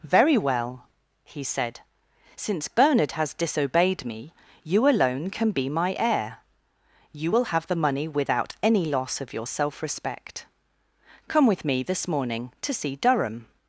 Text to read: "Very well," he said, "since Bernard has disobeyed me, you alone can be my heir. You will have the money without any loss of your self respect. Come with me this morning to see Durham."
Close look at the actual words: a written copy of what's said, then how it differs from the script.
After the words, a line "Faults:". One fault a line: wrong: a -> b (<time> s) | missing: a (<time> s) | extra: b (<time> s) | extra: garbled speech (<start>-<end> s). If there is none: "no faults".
"Very well," he said, "since Bernard has disobeyed me, you alone can be my heir. You will have the money without any loss of your self respect. Come with me this morning to see Durham."
Faults:
no faults